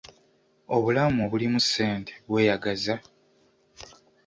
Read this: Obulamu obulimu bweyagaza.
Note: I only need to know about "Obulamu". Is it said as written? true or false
true